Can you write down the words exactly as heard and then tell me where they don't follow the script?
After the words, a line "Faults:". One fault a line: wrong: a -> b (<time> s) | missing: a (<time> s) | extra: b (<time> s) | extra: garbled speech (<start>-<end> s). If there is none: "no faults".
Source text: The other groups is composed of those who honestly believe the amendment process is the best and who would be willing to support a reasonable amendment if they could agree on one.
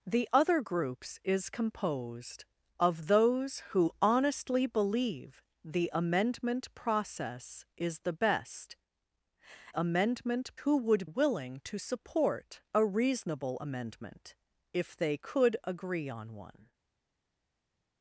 The other groups is composed of those who honestly believe the amendment process is the best amendment who would willing to support a reasonable amendment if they could agree on one.
Faults:
wrong: and -> amendment (9.8 s)
missing: be (11.1 s)